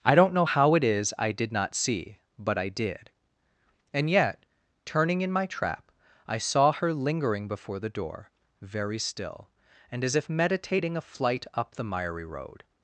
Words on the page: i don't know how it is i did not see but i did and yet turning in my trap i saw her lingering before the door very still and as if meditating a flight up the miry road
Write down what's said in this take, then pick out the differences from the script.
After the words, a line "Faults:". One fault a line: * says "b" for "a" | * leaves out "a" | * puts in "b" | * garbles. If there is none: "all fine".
i don't know how it is i did not see but i did and yet turning in my trap i saw her lingering before the door very still and as if meditating a flight up the miry road
Faults:
all fine